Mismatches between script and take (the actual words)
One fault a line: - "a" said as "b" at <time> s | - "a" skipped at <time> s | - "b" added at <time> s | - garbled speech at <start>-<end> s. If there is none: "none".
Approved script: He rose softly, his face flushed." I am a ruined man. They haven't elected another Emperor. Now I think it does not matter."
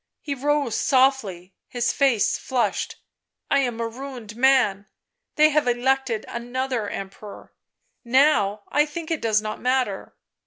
- "haven't" said as "have" at 5.5 s